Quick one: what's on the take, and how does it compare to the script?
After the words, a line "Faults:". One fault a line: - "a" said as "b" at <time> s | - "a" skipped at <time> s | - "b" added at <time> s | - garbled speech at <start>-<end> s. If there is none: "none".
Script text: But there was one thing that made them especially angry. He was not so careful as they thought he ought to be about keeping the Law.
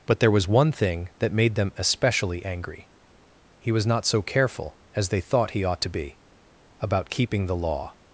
But there was one thing that made them especially angry. He was not so careful as they thought he ought to be about keeping the Law.
Faults:
none